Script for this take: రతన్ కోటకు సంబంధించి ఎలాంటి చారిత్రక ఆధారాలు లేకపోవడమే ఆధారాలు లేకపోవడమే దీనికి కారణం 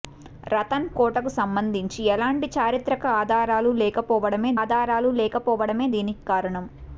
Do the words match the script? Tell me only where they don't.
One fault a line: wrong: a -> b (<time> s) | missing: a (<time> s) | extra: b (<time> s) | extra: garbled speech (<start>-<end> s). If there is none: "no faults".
no faults